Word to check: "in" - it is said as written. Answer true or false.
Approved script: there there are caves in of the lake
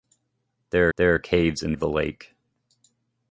true